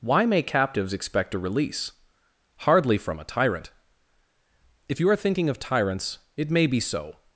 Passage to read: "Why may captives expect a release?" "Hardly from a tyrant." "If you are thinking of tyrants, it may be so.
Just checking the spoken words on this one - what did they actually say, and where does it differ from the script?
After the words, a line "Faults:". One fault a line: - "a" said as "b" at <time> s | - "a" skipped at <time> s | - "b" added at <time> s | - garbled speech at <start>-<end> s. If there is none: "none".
"Why may captives expect a release?" "Hardly from a tyrant." "If you are thinking of tyrants, it may be so.
Faults:
none